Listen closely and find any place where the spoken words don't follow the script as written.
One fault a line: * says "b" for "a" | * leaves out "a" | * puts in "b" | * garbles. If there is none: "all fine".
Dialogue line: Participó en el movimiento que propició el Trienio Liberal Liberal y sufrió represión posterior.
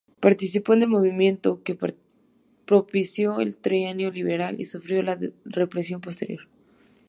* leaves out "Liberal"
* puts in "la"